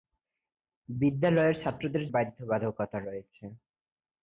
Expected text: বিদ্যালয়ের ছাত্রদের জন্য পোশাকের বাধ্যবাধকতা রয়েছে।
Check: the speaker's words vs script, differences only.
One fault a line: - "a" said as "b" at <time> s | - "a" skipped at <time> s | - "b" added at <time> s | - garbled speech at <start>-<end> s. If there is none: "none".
- "জন্য পোশাকের" skipped at 2.0 s